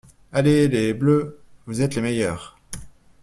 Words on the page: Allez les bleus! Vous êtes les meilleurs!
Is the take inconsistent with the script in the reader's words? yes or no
no